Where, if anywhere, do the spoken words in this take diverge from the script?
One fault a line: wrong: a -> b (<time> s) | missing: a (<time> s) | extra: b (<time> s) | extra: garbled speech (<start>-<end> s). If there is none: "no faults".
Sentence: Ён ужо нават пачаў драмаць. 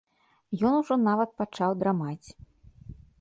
no faults